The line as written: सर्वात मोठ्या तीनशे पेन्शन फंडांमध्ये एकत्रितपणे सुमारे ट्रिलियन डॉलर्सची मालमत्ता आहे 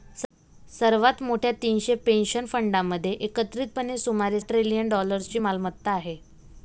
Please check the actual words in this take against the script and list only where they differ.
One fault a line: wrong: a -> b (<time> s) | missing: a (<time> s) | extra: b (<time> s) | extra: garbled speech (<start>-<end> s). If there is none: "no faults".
no faults